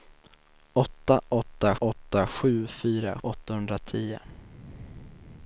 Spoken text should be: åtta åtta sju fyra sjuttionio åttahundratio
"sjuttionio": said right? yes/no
no